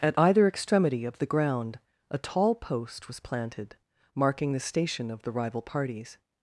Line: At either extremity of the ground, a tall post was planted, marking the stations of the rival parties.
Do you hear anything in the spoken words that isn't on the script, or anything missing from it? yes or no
yes